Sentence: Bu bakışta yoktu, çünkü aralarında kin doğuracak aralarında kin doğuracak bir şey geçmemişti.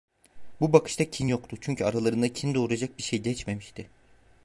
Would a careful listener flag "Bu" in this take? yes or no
no